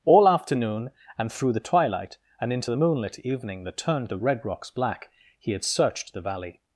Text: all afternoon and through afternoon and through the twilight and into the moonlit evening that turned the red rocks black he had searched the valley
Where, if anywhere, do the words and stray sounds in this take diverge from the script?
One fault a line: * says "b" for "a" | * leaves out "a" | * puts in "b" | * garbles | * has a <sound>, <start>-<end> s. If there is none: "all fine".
* leaves out "afternoon and through"